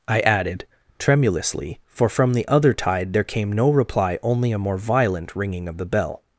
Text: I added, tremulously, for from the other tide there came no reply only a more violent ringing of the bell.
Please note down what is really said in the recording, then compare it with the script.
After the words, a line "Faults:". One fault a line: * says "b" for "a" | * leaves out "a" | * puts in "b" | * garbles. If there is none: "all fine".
I added, tremulously, for from the other tide there came no reply only a more violent ringing of the bell.
Faults:
all fine